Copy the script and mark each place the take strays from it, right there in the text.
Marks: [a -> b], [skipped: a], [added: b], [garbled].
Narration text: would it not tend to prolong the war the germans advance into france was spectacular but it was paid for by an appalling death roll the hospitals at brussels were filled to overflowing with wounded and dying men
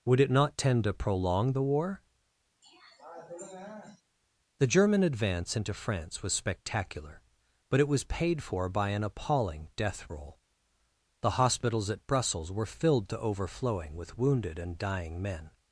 would it not tend to prolong the war the [germans -> german] advance into france was spectacular but it was paid for by an appalling death roll the hospitals at brussels were filled to overflowing with wounded and dying men